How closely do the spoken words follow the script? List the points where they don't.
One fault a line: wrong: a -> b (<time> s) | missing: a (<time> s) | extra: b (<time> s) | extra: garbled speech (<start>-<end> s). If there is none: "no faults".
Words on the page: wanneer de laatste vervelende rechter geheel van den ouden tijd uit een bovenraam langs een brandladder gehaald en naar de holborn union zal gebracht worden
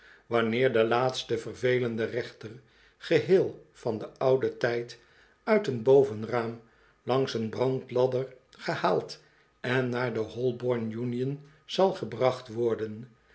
no faults